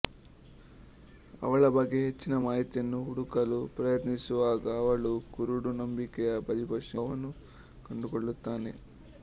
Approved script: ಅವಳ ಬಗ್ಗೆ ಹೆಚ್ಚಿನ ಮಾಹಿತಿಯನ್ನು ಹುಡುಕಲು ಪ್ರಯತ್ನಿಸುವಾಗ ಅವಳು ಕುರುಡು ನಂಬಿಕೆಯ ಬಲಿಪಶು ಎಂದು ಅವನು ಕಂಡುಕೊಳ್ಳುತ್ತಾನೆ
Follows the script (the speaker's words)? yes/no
no